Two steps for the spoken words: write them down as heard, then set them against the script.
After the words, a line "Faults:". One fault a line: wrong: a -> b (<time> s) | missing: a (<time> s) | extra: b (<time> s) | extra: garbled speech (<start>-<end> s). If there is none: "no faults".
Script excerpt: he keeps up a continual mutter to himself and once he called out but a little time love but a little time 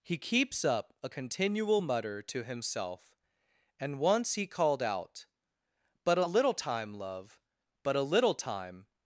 he keeps up a continual mutter to himself and once he called out but a little time love but a little time
Faults:
no faults